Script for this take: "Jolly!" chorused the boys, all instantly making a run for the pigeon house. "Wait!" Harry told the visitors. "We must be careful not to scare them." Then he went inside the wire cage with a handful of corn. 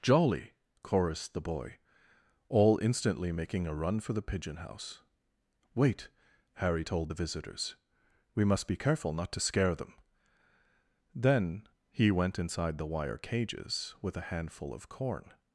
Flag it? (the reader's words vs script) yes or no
yes